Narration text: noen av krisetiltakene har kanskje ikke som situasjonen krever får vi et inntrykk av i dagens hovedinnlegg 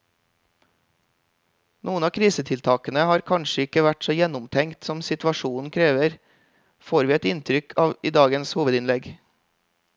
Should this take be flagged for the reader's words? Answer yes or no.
yes